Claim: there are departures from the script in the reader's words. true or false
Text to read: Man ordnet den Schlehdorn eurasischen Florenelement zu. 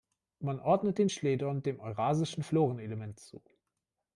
true